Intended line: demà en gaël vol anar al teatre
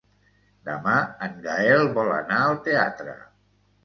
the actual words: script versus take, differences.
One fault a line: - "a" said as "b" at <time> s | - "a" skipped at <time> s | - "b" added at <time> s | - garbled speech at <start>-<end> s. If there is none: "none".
none